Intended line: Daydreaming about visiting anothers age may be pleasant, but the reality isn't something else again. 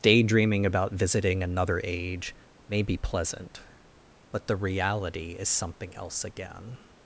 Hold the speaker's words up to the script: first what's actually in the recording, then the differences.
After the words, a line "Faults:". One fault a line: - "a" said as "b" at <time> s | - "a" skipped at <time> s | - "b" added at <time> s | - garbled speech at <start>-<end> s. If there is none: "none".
Daydreaming about visiting another age may be pleasant, but the reality is something else again.
Faults:
- "anothers" said as "another" at 1.4 s
- "isn't" said as "is" at 5.4 s